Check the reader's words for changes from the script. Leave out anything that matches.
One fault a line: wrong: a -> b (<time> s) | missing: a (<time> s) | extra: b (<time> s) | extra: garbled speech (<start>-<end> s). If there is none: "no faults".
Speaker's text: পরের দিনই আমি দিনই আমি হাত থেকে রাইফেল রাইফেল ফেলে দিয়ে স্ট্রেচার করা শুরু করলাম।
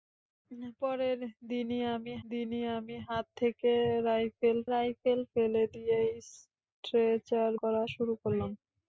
no faults